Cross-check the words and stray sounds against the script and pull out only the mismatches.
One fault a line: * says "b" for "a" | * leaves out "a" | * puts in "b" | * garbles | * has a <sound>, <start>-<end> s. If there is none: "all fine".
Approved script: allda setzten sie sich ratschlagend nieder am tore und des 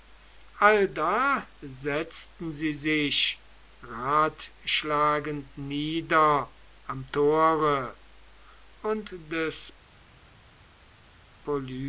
all fine